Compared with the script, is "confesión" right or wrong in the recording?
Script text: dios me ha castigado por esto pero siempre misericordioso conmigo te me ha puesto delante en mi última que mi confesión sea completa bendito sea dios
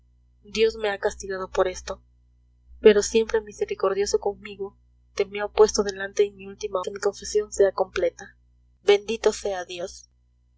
right